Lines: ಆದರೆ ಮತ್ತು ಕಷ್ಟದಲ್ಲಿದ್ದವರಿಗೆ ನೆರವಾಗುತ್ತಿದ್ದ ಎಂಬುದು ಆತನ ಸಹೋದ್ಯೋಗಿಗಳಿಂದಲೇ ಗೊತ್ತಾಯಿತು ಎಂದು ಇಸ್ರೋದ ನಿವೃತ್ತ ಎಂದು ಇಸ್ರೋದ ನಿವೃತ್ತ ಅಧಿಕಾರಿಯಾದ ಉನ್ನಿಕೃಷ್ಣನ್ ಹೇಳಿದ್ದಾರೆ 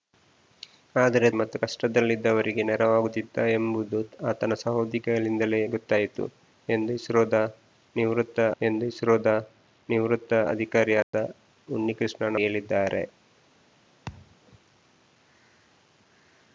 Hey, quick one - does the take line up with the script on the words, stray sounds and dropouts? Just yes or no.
no